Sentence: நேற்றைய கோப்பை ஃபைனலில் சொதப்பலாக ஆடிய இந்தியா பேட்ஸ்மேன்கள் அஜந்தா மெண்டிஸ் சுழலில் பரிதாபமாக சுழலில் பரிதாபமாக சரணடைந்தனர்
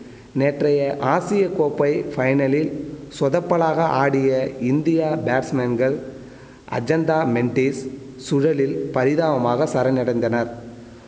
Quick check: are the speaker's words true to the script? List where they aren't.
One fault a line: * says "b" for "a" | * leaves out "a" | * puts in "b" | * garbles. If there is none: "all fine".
* puts in "ஆசிய"
* leaves out "சுழலில் பரிதாபமாக"